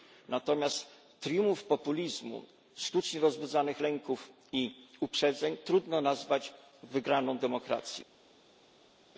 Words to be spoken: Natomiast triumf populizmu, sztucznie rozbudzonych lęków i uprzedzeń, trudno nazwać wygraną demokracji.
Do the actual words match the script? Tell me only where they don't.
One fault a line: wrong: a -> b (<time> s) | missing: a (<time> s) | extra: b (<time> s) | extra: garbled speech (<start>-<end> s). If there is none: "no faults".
no faults